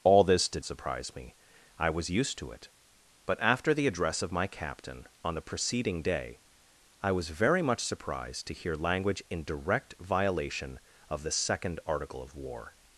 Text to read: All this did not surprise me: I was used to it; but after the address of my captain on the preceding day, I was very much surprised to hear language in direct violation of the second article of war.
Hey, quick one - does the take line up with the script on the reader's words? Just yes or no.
no